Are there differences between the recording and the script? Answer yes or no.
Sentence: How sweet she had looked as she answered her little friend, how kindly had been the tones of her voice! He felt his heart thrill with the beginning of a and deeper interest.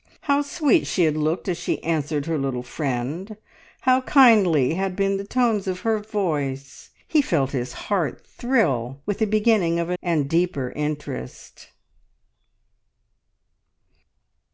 no